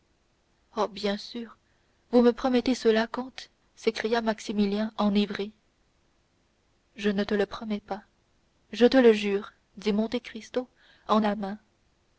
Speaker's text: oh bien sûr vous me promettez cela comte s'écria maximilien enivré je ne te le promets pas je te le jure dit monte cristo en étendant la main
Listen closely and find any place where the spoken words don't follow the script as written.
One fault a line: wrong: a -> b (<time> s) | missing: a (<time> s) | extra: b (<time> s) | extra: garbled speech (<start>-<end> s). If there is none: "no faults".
missing: étendant (11.2 s)